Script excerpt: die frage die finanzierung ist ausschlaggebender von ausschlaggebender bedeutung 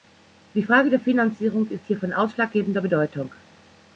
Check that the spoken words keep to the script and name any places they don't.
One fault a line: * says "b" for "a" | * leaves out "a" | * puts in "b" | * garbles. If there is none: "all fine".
* says "der" for "die"
* says "hier" for "ausschlaggebender"